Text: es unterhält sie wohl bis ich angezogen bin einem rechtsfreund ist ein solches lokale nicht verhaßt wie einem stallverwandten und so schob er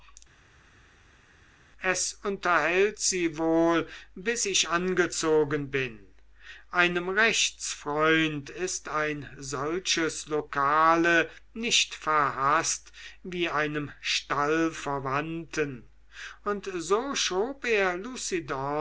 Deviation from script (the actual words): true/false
false